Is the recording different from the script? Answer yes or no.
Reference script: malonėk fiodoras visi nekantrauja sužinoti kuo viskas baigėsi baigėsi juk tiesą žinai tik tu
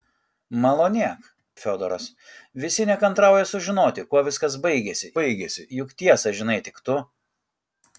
no